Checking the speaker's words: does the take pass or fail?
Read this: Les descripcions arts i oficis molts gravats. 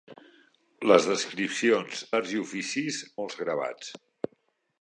pass